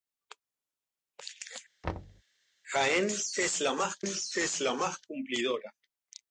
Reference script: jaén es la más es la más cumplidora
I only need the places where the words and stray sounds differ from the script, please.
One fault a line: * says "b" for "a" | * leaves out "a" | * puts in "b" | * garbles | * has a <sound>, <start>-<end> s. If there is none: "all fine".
* has a thud, 1.8-2.2 s